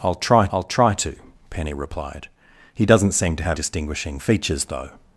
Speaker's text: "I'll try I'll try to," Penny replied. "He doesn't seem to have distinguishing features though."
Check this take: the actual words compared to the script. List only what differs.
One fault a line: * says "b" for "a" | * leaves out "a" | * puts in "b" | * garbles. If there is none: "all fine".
all fine